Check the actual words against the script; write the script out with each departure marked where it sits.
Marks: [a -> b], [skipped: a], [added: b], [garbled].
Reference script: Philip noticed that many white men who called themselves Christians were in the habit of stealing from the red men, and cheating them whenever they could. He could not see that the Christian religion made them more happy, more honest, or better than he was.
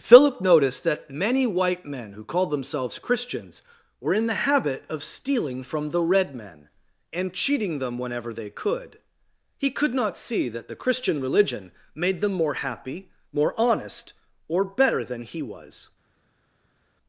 Philip noticed that many white men who called themselves Christians were in the habit of stealing from the red men, and cheating them whenever they could. He could not see that the Christian religion made them more happy, more honest, or better than he was.